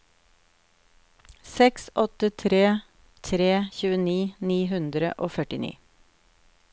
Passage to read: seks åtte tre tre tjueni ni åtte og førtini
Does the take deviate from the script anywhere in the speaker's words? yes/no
yes